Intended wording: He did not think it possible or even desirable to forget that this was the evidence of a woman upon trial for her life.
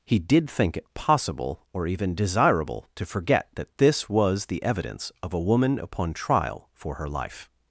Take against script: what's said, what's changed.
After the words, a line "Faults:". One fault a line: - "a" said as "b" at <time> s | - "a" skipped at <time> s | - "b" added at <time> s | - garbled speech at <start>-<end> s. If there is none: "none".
He did think it possible or even desirable to forget that this was the evidence of a woman upon trial for her life.
Faults:
- "not" skipped at 0.5 s